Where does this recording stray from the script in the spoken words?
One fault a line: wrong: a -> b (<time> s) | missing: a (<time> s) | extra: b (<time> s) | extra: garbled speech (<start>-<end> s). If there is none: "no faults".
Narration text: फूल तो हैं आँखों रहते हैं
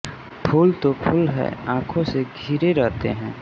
extra: फूल (0.9 s)
extra: से घिरे (2.0 s)